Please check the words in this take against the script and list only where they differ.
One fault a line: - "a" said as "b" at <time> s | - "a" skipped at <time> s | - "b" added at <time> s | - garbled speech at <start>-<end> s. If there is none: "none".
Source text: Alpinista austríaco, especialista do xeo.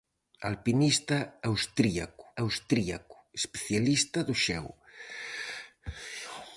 - "austríaco" added at 2.4 s